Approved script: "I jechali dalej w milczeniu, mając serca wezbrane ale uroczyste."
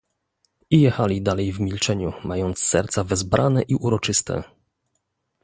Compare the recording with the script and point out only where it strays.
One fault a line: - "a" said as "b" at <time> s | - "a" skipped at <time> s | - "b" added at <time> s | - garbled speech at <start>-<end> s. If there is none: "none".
- "ale" said as "i" at 3.6 s